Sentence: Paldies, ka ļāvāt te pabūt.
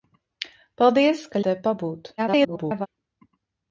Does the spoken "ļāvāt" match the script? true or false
false